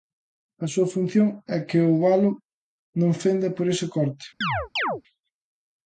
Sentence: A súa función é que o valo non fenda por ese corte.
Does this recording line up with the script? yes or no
yes